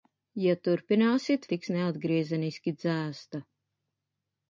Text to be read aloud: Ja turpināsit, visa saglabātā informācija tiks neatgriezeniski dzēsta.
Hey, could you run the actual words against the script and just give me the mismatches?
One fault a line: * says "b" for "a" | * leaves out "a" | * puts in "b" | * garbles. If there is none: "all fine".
* leaves out "visa saglabātā informācija"